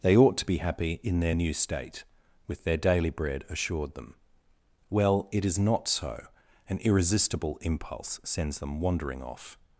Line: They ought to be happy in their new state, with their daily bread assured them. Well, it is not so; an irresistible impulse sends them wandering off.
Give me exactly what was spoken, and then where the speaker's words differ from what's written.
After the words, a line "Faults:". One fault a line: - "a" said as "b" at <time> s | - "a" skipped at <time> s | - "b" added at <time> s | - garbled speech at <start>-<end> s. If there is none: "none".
They ought to be happy in their new state, with their daily bread assured them. Well, it is not so; an irresistible impulse sends them wandering off.
Faults:
none